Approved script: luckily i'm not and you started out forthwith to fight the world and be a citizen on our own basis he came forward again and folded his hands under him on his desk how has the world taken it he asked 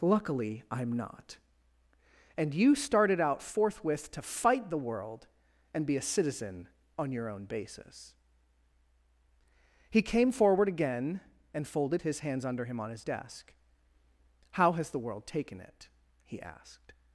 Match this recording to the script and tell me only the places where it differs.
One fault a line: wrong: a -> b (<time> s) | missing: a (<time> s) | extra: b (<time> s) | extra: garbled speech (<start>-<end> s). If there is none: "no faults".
wrong: our -> your (7.1 s)